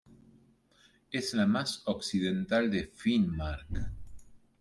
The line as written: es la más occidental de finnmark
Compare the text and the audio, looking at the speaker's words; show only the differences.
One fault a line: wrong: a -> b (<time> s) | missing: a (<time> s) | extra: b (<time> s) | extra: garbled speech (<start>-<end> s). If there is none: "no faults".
no faults